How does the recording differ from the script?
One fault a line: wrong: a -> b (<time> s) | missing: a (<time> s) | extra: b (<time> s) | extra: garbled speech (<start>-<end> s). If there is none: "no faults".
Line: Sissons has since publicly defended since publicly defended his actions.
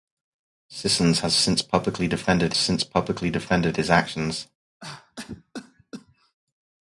no faults